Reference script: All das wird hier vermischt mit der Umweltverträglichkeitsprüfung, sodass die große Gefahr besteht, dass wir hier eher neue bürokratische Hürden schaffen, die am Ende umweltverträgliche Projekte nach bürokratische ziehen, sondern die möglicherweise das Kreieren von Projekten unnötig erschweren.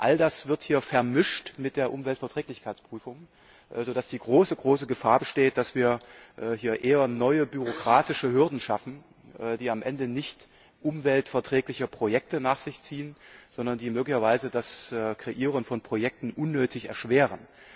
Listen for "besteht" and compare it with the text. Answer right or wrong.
right